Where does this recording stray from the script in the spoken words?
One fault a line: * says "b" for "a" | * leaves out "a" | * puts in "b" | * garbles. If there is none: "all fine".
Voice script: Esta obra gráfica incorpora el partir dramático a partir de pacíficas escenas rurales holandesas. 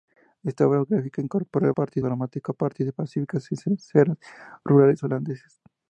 all fine